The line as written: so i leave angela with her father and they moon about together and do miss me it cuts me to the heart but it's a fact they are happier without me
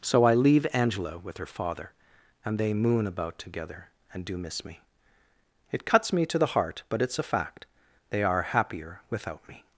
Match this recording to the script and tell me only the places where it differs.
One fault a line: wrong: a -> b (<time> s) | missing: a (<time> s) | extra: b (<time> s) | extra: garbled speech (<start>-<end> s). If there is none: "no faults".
no faults